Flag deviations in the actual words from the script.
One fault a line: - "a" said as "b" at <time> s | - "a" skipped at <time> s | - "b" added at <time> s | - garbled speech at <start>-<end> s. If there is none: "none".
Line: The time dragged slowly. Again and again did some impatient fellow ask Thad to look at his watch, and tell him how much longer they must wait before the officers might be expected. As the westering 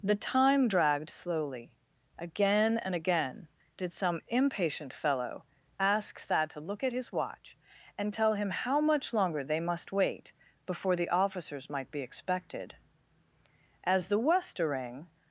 none